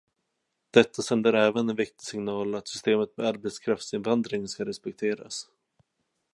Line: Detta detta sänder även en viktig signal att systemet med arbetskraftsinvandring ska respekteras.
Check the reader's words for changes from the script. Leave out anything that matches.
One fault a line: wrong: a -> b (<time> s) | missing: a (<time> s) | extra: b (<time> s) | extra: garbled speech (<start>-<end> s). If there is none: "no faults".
missing: detta (1.0 s)